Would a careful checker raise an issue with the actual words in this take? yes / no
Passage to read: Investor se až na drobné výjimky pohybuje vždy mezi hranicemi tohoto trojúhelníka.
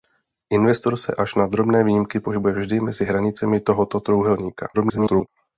yes